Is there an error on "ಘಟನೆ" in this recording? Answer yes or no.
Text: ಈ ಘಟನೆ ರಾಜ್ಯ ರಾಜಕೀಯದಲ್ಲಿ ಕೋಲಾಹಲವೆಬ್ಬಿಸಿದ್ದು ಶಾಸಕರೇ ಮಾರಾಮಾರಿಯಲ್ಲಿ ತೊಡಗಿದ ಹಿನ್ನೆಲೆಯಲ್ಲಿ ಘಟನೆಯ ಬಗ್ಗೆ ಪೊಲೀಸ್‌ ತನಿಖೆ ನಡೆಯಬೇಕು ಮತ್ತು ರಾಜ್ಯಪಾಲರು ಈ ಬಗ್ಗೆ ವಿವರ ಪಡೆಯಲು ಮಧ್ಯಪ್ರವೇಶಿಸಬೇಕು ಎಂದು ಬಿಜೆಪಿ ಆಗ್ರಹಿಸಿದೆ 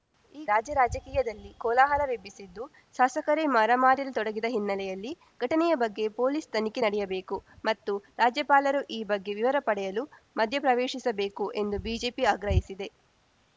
yes